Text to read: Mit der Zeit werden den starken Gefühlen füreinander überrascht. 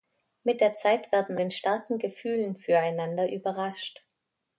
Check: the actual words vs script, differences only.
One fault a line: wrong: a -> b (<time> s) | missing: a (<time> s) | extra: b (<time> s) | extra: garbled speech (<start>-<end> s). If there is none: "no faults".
no faults